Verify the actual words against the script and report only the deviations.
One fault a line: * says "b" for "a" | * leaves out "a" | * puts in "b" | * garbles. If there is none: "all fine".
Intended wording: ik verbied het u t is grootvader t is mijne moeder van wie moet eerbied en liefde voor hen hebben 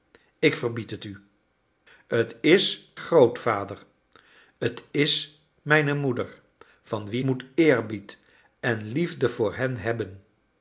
all fine